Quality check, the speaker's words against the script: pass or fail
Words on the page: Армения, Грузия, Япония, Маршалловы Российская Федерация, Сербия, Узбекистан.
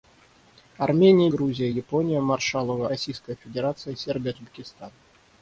pass